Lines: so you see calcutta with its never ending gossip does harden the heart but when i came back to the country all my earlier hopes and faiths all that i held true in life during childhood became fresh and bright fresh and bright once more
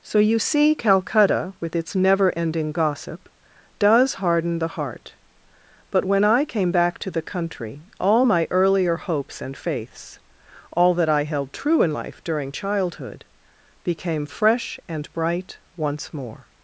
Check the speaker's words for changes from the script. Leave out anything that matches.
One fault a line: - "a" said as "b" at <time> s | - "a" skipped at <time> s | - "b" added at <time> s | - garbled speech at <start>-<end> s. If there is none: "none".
- "fresh and bright" skipped at 15.6 s